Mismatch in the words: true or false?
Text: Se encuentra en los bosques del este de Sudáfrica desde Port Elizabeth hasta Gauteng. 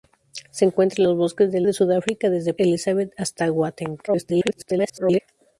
true